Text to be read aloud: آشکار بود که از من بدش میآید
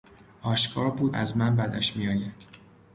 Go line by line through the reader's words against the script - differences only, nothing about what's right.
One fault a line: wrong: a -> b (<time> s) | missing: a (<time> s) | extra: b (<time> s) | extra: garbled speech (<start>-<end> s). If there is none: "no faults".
missing: که (1.1 s)